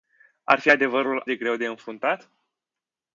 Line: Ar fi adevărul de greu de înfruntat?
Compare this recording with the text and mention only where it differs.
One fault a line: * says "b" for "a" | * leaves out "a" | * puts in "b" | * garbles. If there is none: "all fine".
all fine